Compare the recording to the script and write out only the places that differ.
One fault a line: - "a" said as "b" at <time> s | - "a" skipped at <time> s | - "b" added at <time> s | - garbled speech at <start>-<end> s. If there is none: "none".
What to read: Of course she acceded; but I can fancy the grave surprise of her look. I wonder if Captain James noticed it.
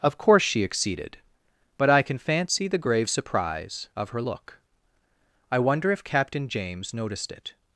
none